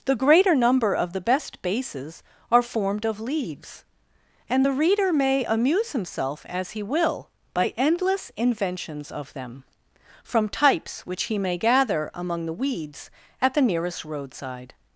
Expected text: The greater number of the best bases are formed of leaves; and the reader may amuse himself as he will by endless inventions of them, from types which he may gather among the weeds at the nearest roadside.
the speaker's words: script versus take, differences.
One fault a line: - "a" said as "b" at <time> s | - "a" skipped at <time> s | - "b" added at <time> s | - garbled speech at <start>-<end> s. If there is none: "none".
none